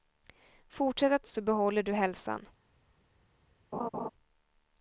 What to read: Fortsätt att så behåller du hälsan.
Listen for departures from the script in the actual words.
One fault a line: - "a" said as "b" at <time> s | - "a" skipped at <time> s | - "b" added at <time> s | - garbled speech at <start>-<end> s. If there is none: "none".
none